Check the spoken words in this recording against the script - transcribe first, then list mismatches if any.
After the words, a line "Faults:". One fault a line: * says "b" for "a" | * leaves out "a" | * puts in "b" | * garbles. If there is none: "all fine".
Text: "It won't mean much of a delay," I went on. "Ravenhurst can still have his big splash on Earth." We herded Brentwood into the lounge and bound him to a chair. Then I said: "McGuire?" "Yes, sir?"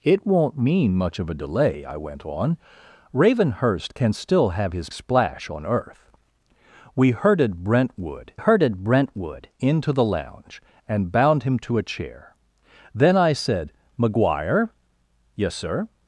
"It won't mean much of a delay," I went on. "Ravenhurst can still have his splash on Earth." We herded Brentwood herded Brentwood into the lounge and bound him to a chair. Then I said: "McGuire?" "Yes, sir?"
Faults:
* leaves out "big"
* puts in "herded Brentwood"